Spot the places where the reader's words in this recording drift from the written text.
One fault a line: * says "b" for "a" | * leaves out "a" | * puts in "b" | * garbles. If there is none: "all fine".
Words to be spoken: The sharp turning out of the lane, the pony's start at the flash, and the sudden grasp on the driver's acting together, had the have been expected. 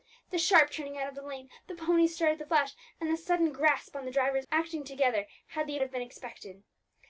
all fine